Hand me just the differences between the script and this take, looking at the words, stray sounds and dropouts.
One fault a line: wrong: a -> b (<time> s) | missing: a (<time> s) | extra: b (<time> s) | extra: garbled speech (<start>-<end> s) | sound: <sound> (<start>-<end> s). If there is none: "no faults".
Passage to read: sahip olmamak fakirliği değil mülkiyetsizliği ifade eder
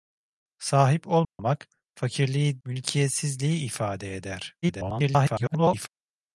sound: dropout (1.2-1.4 s)
missing: değil (2.6 s)
extra: garbled speech (4.6-5.9 s)